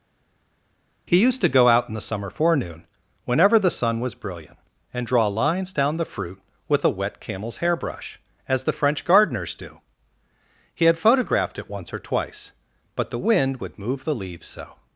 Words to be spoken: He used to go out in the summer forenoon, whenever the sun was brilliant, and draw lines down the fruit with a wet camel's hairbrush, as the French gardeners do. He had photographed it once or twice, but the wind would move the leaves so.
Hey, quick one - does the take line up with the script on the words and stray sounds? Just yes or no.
yes